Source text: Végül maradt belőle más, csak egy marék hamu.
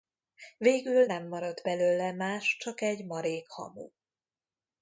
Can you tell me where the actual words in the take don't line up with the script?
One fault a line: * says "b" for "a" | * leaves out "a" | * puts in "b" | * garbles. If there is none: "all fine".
* puts in "nem"